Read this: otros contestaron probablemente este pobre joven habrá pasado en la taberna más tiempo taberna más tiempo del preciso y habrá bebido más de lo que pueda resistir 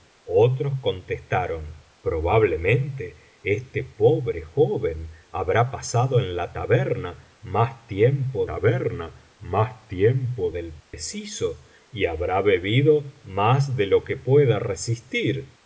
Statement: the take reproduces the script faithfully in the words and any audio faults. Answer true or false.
false